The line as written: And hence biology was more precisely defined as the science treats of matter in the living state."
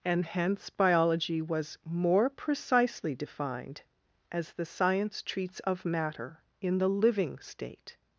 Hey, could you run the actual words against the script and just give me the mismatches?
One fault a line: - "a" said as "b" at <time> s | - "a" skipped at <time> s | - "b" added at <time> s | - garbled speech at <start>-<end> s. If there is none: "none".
none